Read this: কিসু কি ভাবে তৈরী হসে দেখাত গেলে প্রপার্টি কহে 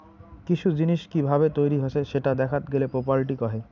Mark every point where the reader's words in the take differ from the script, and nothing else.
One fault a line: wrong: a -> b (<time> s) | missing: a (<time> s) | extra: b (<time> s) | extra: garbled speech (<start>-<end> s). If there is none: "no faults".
extra: জিনিস (0.7 s)
extra: সেটা (2.0 s)